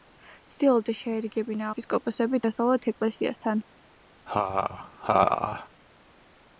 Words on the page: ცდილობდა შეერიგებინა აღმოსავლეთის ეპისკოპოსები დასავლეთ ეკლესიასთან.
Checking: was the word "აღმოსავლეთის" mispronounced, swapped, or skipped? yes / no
yes